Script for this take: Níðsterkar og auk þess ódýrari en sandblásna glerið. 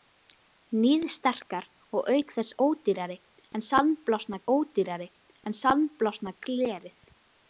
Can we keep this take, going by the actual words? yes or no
no